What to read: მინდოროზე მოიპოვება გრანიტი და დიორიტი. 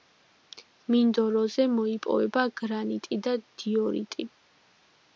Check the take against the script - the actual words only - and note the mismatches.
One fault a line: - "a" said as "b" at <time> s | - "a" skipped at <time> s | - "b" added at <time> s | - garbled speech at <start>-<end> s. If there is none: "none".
none